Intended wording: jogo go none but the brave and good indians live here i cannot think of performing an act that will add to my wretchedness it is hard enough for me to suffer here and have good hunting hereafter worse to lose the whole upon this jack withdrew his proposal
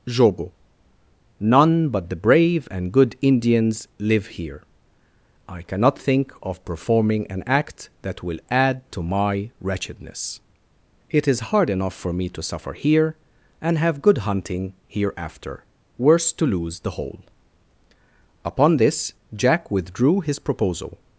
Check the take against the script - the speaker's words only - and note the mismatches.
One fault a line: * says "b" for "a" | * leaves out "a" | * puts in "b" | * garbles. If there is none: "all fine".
* leaves out "go"